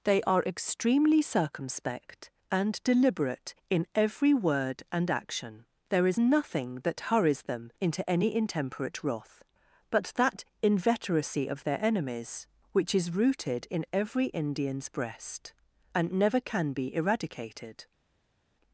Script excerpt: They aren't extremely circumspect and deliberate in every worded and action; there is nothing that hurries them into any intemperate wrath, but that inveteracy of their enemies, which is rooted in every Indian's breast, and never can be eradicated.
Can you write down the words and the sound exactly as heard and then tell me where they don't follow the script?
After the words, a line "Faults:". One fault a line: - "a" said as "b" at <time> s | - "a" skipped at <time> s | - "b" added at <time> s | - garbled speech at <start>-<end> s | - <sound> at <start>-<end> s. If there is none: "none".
They are extremely circumspect and deliberate in every word and action; there is nothing that hurries them into any intemperate wrath, but that inveteracy of their enemies, which is rooted in every Indian's breast, and never can be eradicated.
Faults:
- "aren't" said as "are" at 0.2 s
- "worded" said as "word" at 4.3 s